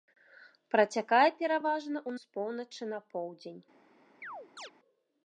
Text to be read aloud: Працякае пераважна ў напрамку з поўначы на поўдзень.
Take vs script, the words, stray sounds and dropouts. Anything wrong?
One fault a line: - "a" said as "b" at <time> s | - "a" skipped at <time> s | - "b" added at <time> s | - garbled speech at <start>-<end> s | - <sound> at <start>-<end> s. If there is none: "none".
- "напрамку" skipped at 2.1 s
- chirp at 4.2-4.7 s